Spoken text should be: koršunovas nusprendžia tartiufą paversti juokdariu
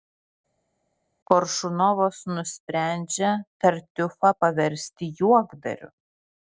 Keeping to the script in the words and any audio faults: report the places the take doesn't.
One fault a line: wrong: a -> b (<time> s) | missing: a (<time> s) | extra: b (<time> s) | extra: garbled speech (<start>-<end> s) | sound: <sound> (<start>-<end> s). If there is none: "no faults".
no faults